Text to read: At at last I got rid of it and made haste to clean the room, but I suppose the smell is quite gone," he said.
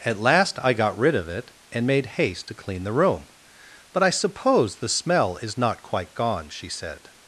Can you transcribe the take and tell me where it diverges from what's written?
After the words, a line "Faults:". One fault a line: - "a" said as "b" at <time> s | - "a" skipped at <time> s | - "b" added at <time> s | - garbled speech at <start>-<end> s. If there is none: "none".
At last I got rid of it and made haste to clean the room, but I suppose the smell is not quite gone," she said.
Faults:
- "at" skipped at 0.2 s
- "not" added at 5.6 s
- "he" said as "she" at 6.5 s